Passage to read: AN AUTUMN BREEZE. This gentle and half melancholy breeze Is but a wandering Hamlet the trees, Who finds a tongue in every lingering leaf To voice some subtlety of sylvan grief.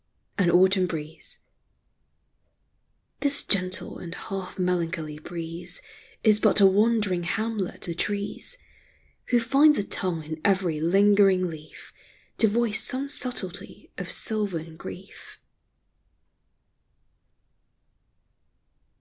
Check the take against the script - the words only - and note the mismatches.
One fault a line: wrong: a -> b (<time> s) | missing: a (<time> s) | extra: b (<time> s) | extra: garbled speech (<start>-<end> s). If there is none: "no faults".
no faults